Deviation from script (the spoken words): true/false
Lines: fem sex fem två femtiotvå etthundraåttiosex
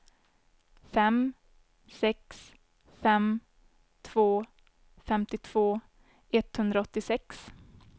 false